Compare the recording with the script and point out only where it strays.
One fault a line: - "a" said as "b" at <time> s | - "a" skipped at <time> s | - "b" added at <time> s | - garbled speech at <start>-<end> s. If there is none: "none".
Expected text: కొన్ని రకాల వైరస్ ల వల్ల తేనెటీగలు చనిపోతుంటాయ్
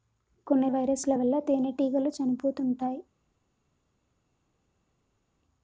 - "రకాల" skipped at 0.7 s